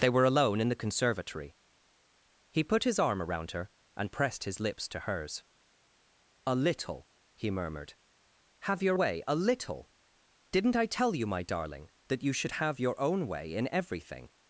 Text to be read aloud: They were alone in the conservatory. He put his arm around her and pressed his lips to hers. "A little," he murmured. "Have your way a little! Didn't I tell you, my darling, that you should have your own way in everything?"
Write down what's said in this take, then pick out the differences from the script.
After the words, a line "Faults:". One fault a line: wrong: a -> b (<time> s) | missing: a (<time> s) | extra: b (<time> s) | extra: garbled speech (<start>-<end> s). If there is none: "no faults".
They were alone in the conservatory. He put his arm around her and pressed his lips to hers. "A little," he murmured. "Have your way a little! Didn't I tell you, my darling, that you should have your own way in everything?"
Faults:
no faults